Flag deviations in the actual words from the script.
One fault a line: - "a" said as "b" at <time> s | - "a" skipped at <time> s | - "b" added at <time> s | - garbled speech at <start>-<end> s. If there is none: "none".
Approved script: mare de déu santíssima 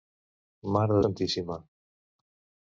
- "déu" skipped at 1.0 s